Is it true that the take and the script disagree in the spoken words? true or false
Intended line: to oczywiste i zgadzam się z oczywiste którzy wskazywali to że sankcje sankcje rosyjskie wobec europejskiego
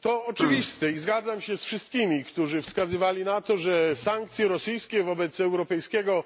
true